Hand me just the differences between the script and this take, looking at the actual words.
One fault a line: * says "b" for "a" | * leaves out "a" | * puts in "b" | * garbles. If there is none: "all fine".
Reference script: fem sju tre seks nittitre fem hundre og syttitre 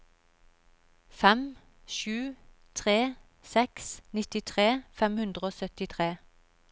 all fine